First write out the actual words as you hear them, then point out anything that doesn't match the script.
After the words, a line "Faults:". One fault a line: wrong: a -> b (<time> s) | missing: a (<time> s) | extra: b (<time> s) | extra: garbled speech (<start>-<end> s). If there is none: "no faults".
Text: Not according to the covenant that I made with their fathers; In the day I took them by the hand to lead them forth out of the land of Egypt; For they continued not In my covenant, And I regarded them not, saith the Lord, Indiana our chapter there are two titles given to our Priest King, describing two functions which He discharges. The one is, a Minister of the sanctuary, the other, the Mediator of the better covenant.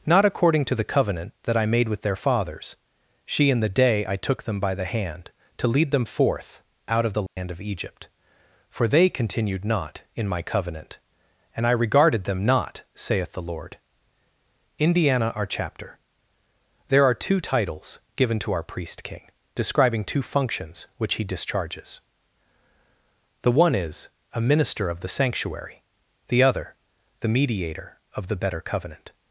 Not according to the covenant that I made with their fathers; she In the day I took them by the hand to lead them forth out of the land of Egypt; For they continued not In my covenant, And I regarded them not, saith the Lord, Indiana our chapter there are two titles given to our Priest King, describing two functions which He discharges. The one is, a Minister of the sanctuary, the other, the Mediator of the better covenant.
Faults:
extra: she (3.2 s)